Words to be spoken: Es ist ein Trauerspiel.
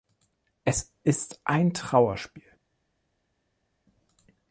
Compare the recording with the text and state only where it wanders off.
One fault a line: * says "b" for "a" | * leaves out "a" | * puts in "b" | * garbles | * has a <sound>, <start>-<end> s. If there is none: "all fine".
all fine